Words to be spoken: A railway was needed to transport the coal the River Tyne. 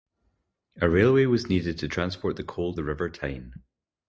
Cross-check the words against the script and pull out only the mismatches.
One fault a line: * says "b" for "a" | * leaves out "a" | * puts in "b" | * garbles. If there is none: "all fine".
all fine